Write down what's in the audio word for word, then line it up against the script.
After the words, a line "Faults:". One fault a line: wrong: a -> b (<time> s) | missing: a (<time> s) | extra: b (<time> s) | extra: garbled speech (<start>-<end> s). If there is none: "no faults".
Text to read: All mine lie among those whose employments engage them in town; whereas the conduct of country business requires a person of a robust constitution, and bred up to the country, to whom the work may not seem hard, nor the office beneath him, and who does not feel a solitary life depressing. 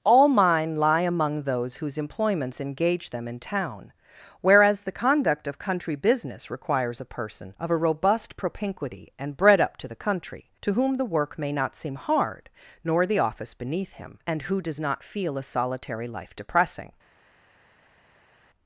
All mine lie among those whose employments engage them in town; whereas the conduct of country business requires a person of a robust propinquity, and bred up to the country, to whom the work may not seem hard, nor the office beneath him, and who does not feel a solitary life depressing.
Faults:
wrong: constitution -> propinquity (8.3 s)